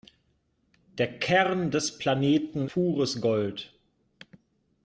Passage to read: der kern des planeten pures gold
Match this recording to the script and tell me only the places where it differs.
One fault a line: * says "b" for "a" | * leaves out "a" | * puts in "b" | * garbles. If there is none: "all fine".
all fine